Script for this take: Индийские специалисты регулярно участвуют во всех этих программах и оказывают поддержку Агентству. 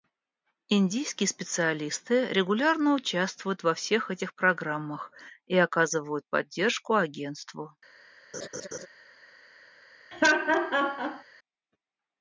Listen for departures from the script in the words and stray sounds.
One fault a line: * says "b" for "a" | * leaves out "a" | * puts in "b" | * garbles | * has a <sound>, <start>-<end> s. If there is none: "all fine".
* has a laugh, 8.3-8.9 s
* has a laugh, 10.1-11.2 s